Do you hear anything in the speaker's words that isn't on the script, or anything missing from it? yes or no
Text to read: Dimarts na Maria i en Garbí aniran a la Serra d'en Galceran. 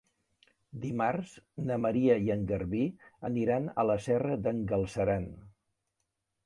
no